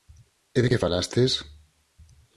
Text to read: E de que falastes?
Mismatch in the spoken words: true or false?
false